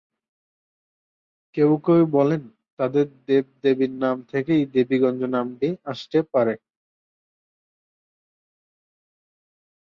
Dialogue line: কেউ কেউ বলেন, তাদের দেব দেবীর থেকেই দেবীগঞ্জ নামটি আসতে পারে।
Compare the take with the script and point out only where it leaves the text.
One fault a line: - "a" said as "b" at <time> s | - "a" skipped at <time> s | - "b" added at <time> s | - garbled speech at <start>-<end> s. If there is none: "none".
- "নাম" added at 4.0 s